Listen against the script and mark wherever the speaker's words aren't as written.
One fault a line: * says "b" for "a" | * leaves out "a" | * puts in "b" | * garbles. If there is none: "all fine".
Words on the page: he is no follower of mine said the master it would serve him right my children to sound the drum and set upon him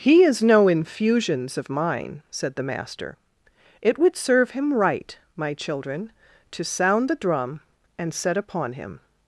* says "infusions" for "follower"